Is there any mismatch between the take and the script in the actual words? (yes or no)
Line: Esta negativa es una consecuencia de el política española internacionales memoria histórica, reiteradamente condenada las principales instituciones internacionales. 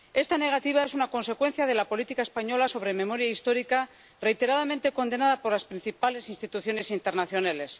yes